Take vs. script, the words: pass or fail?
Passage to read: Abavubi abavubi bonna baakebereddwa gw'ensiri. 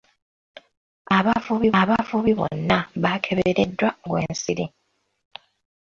pass